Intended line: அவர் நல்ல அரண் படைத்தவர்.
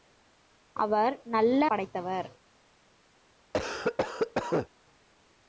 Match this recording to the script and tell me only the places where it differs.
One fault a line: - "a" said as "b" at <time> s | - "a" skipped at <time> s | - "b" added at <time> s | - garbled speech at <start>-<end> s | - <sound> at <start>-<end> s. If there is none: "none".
- "அரண்" skipped at 1.7 s
- cough at 3.5-4.7 s